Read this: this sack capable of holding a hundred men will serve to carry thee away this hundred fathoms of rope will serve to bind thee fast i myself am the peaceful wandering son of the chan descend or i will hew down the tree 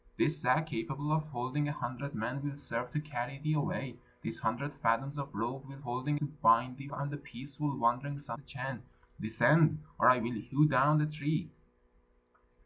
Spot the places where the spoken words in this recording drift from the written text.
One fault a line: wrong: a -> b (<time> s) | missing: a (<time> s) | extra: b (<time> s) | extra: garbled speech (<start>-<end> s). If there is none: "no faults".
wrong: serve -> holding (5.8 s)
missing: fast i myself (6.9 s)
missing: of (8.4 s)